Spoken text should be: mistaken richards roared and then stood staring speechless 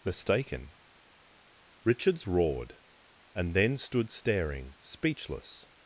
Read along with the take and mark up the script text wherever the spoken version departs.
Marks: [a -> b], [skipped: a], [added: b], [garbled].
mistaken richards roared and then stood staring speechless